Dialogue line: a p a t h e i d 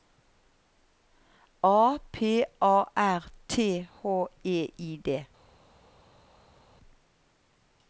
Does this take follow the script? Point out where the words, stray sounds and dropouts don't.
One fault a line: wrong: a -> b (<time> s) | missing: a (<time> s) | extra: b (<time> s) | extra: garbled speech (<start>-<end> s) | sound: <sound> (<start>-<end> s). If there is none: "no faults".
extra: r (3.0 s)